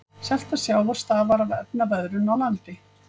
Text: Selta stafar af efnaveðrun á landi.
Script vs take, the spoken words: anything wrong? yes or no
yes